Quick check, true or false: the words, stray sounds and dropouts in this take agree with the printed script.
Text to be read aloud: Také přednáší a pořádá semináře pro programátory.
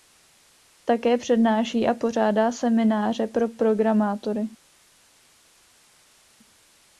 true